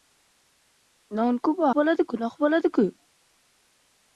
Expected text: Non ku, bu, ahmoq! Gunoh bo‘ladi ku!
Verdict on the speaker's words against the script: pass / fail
fail